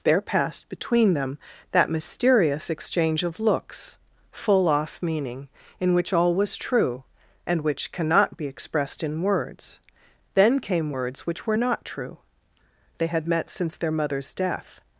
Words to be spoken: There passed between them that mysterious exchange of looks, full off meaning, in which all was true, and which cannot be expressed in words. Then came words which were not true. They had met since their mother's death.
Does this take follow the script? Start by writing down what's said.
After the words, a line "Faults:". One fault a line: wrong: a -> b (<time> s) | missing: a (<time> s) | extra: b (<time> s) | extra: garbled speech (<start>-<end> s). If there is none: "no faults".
There passed between them that mysterious exchange of looks, full off meaning, in which all was true, and which cannot be expressed in words. Then came words which were not true. They had met since their mother's death.
Faults:
no faults